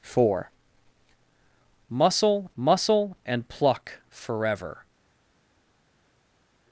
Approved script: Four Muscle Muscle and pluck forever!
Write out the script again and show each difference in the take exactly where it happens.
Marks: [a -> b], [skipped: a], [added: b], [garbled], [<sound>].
Four Muscle Muscle and pluck forever!